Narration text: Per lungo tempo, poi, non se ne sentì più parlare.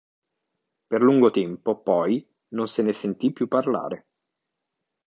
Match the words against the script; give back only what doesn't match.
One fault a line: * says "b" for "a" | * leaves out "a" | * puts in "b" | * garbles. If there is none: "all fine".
all fine